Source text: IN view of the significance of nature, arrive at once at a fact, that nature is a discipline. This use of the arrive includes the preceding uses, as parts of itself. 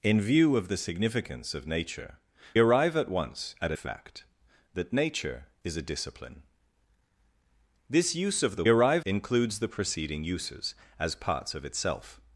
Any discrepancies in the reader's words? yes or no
no